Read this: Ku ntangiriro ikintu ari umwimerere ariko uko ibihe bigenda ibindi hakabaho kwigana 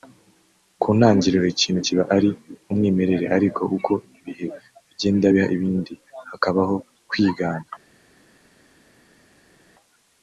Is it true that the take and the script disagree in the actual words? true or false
true